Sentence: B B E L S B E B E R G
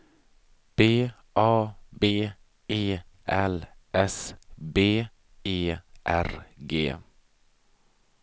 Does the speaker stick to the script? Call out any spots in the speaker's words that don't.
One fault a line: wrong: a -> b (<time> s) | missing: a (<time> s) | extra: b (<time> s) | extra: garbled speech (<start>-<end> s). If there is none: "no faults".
extra: A (1.4 s)
missing: B E (5.8 s)